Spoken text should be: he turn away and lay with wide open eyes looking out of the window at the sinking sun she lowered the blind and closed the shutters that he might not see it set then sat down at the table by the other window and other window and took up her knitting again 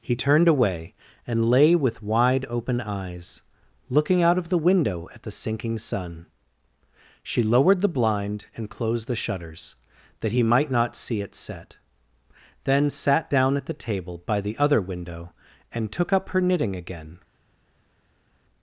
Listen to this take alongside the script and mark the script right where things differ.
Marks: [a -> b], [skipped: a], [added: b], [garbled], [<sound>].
he [turn -> turned] away and lay with wide open eyes looking out of the window at the sinking sun she lowered the blind and closed the shutters that he might not see it set then sat down at the table by the other window and [skipped: other window and] took up her knitting again